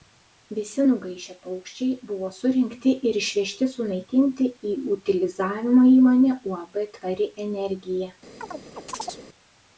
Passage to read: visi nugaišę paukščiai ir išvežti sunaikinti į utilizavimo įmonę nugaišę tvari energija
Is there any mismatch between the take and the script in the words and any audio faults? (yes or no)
yes